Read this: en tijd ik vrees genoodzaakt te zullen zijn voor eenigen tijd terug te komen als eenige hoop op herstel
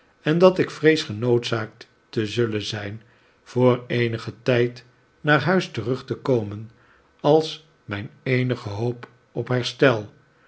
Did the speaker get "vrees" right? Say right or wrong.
right